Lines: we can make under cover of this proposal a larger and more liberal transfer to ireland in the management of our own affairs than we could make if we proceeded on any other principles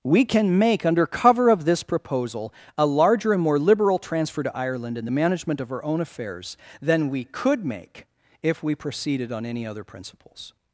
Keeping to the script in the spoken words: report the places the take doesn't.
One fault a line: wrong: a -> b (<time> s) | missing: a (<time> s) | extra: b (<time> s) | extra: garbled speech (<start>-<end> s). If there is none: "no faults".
no faults